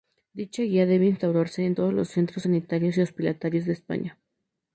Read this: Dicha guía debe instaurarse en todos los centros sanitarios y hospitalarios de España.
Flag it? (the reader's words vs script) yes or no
no